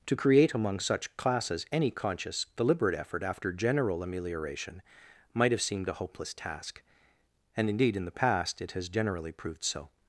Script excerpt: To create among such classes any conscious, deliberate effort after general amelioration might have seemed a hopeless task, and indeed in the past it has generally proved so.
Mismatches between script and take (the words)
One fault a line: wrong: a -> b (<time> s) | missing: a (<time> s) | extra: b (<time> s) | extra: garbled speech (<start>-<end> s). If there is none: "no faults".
no faults